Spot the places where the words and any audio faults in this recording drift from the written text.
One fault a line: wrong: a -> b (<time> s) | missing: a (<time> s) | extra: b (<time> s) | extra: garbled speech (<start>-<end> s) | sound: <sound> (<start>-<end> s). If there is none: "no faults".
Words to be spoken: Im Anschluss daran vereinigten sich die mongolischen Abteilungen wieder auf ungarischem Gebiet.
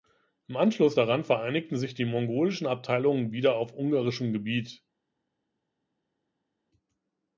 no faults